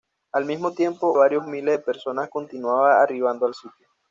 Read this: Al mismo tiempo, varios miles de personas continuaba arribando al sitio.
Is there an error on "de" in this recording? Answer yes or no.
no